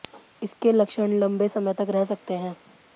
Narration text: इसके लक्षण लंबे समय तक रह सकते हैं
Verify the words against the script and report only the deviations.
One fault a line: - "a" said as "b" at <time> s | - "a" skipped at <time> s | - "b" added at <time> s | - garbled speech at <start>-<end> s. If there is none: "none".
none